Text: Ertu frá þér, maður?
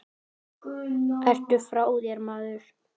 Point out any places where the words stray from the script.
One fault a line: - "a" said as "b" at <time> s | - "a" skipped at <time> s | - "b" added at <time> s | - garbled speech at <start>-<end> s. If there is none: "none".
none